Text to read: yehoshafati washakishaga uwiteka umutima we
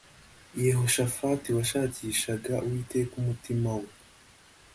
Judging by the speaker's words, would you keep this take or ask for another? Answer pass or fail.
pass